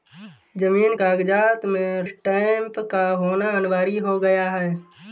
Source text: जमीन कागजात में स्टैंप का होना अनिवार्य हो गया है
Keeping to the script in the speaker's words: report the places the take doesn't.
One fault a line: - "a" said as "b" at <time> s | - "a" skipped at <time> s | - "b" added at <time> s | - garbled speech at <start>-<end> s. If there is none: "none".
none